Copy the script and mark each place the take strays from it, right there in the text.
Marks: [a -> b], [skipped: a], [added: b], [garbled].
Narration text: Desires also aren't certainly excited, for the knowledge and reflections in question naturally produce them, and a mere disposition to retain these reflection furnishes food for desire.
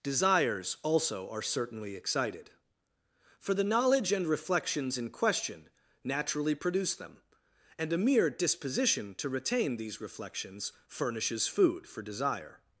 Desires also [aren't -> are] certainly excited, for the knowledge and reflections in question naturally produce them, and a mere disposition to retain these [reflection -> reflections] furnishes food for desire.